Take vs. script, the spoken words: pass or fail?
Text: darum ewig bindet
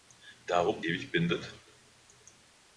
pass